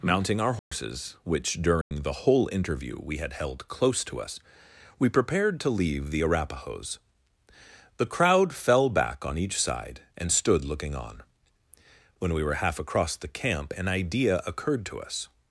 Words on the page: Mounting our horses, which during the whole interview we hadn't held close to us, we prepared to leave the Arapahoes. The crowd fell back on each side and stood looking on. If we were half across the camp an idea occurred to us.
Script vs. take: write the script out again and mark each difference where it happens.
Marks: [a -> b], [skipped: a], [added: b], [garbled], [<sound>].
Mounting our horses, [dropout] which during [dropout] the whole interview we [hadn't -> had] held close to us, we prepared to leave the Arapahoes. The crowd fell back on each side and stood looking on. [If -> When] we were half across the camp an idea occurred to us.